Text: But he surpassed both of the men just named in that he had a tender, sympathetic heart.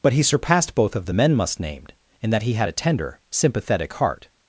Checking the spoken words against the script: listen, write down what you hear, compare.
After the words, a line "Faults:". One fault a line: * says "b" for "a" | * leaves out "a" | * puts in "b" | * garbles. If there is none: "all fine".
But he surpassed both of the men must named in that he had a tender, sympathetic heart.
Faults:
* says "must" for "just"